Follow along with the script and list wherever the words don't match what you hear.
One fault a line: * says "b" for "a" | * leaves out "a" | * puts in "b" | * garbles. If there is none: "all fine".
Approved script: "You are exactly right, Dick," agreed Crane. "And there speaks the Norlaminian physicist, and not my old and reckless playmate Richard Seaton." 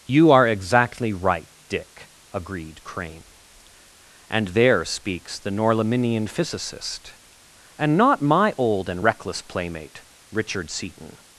all fine